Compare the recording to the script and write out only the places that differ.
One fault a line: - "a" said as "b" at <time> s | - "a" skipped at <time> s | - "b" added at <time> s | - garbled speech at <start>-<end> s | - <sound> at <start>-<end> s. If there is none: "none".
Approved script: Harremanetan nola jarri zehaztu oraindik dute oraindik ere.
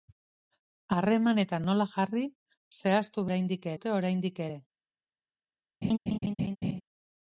- laugh at 5.8-6.8 s